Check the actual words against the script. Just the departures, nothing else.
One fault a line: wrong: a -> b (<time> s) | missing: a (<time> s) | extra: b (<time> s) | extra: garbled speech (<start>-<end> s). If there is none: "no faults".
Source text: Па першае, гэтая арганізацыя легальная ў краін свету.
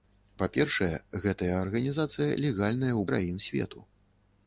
no faults